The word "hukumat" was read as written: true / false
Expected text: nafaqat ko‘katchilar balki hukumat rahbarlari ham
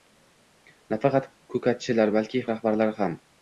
false